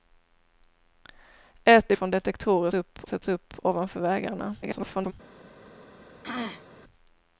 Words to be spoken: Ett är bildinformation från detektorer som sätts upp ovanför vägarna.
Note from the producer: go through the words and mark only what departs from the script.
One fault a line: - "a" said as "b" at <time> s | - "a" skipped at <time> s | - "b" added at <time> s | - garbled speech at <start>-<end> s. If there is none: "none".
- "bildinformation" skipped at 2.0 s
- "som" said as "upp" at 2.7 s
- garbled speech at 4.6-5.1 s